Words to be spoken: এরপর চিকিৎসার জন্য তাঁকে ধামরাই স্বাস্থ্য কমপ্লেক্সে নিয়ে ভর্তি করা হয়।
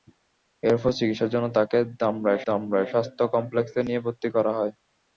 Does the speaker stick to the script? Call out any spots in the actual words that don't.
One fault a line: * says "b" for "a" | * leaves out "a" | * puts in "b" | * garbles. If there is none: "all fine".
* puts in "ধামরাই"